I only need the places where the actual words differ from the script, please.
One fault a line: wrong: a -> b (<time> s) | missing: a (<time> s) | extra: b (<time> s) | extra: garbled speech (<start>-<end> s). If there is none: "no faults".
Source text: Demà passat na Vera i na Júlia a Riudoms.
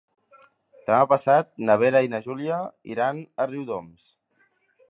extra: iran (3.0 s)